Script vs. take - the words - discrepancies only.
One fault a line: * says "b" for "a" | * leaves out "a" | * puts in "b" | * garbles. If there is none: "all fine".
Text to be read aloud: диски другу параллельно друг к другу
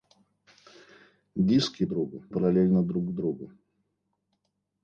all fine